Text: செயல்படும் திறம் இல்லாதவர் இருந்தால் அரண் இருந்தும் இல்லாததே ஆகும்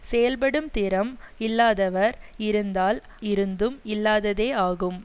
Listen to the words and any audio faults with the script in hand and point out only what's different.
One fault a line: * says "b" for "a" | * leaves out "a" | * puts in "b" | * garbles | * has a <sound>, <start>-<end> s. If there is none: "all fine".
* leaves out "அரண்"